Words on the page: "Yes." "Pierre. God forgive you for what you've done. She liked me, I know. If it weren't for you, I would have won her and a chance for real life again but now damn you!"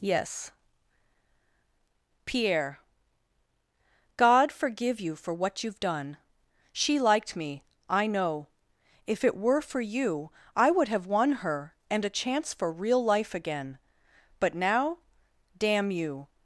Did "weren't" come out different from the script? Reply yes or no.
yes